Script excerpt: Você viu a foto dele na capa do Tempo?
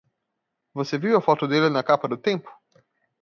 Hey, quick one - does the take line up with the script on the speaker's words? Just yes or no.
yes